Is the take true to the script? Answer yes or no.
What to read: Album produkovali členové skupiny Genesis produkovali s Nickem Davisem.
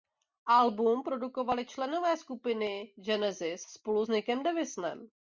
no